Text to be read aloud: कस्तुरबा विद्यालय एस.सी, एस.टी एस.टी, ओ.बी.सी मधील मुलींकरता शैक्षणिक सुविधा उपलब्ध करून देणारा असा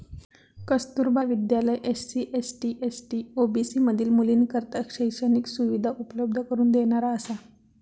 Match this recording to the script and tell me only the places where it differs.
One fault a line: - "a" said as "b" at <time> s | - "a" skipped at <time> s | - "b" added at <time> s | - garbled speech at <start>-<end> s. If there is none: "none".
none